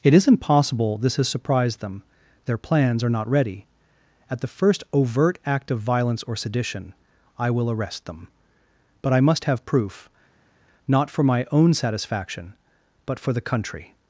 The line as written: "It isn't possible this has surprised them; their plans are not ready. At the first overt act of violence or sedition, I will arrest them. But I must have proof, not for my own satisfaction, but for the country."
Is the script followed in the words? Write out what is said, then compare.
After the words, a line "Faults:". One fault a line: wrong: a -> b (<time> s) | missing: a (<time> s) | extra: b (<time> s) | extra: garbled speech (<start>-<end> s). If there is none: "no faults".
"It isn't possible this has surprised them; their plans are not ready. At the first overt act of violence or sedition, I will arrest them. But I must have proof, not for my own satisfaction, but for the country."
Faults:
no faults